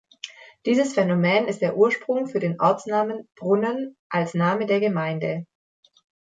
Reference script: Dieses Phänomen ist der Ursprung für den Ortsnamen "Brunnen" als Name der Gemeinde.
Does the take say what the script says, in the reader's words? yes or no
yes